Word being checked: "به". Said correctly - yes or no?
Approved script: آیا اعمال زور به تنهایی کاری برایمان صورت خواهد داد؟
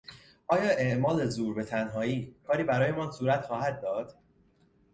yes